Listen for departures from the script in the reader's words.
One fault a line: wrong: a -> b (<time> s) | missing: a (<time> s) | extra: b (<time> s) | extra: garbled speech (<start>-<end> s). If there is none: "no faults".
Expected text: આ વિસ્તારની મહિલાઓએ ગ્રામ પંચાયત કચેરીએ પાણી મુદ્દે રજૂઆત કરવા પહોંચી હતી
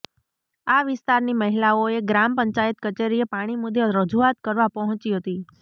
no faults